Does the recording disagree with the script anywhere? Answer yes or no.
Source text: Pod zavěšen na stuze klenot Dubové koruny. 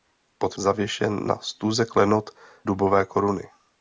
no